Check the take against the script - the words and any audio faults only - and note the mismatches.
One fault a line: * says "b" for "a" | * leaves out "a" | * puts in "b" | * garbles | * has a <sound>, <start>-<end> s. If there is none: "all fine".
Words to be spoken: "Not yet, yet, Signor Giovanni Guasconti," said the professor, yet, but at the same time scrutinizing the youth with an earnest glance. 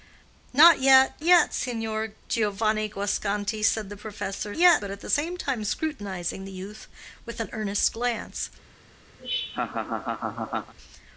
* has a laugh, 9.2-10.7 s